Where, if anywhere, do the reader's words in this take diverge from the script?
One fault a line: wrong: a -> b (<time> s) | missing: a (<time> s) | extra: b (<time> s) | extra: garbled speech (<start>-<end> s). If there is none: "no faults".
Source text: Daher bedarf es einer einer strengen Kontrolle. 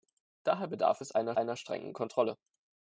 no faults